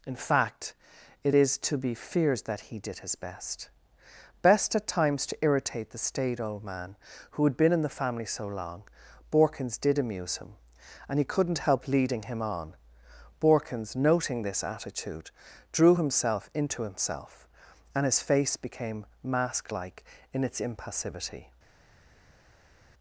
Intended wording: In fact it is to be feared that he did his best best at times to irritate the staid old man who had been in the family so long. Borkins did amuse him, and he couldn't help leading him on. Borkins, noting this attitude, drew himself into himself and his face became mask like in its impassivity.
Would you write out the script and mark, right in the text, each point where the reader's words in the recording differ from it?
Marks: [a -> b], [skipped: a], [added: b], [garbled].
In fact it is to be feared that he did his best best at times to irritate the staid old man who had been in the family so long. Borkins did amuse him, and he couldn't help leading him on. Borkins, noting this attitude, drew himself into himself and his face became mask like in its impassivity.